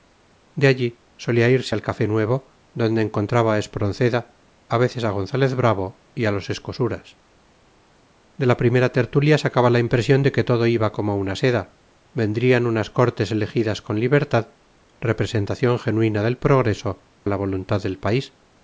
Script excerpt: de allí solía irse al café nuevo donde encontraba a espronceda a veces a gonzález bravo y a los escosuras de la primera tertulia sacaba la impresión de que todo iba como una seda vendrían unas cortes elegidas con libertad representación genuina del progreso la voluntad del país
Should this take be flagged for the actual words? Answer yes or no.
no